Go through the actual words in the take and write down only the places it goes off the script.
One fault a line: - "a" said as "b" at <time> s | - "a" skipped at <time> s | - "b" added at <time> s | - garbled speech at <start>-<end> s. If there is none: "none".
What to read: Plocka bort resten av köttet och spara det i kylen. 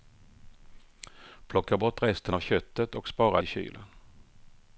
- "det" skipped at 3.4 s